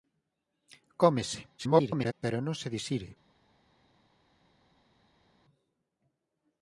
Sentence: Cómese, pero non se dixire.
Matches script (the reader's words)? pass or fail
fail